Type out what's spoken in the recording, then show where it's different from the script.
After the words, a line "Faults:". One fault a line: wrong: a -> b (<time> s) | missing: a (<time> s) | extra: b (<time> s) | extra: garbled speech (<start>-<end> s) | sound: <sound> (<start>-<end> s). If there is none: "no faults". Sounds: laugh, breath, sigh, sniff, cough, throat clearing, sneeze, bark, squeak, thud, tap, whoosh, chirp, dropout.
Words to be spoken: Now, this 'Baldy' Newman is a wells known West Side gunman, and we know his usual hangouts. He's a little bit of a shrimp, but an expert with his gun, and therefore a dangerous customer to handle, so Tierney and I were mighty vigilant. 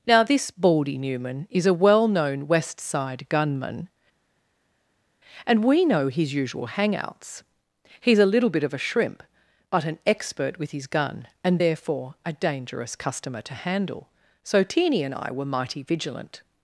Now, this 'Baldy' Newman is a well known West Side gunman, and we know his usual hangouts. He's a little bit of a shrimp, but an expert with his gun, and therefore a dangerous customer to handle, so Tierney and I were mighty vigilant.
Faults:
wrong: wells -> well (1.8 s)